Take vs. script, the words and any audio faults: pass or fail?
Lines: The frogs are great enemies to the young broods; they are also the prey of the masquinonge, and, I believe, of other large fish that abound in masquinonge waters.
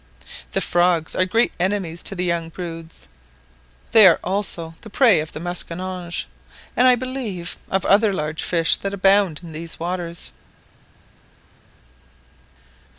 fail